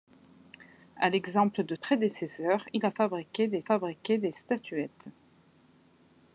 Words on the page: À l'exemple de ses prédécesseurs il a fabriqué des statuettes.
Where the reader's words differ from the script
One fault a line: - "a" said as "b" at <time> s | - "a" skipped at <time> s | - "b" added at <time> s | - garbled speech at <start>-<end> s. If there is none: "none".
- "ses" skipped at 1.8 s
- "fabriqué des" added at 3.6 s